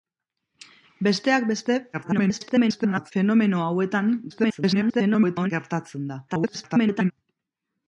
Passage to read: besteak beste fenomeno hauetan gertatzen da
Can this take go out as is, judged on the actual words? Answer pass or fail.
fail